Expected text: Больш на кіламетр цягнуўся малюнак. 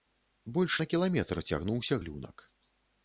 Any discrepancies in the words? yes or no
no